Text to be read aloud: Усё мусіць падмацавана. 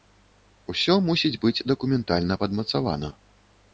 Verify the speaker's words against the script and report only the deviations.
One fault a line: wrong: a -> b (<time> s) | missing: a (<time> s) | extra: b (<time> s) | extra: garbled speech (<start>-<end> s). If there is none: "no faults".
extra: быць дакументальна (1.4 s)